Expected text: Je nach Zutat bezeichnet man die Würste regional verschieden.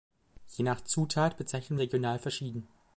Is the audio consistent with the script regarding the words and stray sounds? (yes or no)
no